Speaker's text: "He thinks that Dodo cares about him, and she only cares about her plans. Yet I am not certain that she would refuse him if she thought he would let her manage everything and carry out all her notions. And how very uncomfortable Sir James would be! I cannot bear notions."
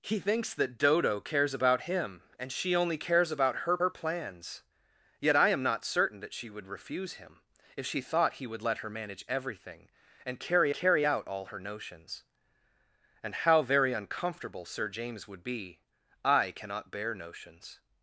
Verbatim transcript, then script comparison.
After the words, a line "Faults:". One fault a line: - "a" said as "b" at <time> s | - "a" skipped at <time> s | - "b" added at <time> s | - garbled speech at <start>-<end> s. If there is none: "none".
"He thinks that Dodo cares about him, and she only cares about her her plans. Yet I am not certain that she would refuse him if she thought he would let her manage everything and carry carry out all her notions. And how very uncomfortable Sir James would be! I cannot bear notions."
Faults:
- "her" added at 3.8 s
- "carry" added at 10.7 s